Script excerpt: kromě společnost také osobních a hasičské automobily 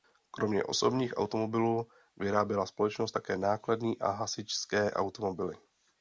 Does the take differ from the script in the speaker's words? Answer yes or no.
yes